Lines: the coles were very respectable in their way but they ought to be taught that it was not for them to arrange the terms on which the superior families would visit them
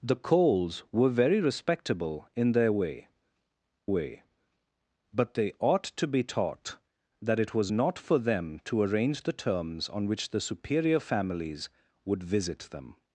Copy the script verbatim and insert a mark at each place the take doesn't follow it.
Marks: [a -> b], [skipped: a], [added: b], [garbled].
the coles were very respectable in their way [added: way] but they ought to be taught that it was not for them to arrange the terms on which the superior families would visit them